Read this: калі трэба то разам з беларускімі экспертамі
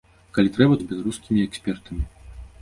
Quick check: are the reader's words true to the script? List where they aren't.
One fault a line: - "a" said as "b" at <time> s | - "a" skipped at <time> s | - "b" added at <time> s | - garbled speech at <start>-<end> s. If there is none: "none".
- "то разам" skipped at 0.8 s